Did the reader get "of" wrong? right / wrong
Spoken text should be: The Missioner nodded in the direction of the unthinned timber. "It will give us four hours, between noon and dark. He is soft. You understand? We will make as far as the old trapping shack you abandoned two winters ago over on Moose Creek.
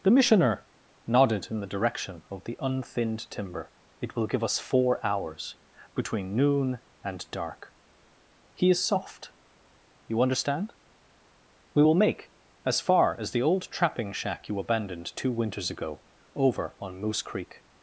right